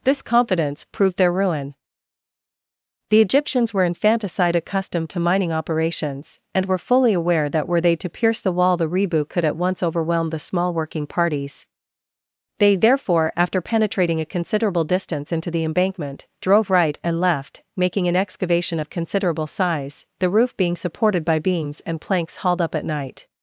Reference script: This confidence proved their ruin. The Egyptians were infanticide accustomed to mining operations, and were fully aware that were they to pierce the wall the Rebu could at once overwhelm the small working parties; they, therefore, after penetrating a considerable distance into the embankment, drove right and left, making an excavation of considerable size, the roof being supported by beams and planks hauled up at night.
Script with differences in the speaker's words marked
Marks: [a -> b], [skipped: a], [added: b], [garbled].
This confidence proved their ruin. The Egyptians were infanticide accustomed to mining operations, and were fully aware that were they to pierce the wall the Rebu could at once overwhelm the small working parties; they, therefore, after penetrating a considerable distance into the embankment, drove right and left, making an excavation of considerable size, the roof being supported by beams and planks hauled up at night.